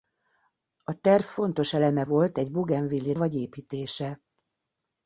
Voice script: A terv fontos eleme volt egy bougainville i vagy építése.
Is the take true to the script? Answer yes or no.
yes